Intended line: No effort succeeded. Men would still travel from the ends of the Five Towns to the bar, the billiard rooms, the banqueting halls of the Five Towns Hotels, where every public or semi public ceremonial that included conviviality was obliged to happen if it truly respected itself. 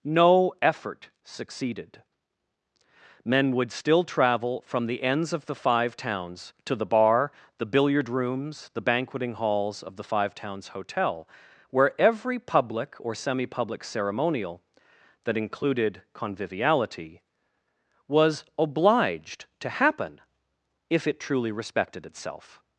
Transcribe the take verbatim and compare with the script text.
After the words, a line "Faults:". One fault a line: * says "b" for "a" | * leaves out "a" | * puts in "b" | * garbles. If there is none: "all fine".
No effort succeeded. Men would still travel from the ends of the Five Towns to the bar, the billiard rooms, the banqueting halls of the Five Towns Hotel, where every public or semi public ceremonial that included conviviality was obliged to happen if it truly respected itself.
Faults:
* says "Hotel" for "Hotels"